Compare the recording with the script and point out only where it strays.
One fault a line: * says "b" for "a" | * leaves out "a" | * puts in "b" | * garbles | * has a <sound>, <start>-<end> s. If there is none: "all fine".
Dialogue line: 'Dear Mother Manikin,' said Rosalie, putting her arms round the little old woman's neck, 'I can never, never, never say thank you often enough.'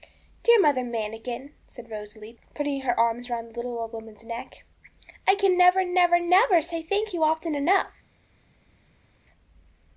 all fine